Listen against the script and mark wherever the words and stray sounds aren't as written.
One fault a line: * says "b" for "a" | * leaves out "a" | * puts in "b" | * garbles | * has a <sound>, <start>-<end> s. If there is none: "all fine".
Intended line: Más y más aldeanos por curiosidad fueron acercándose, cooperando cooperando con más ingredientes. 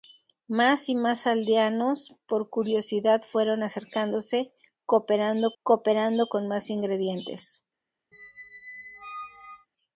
* has a squeak, 8.1-9.7 s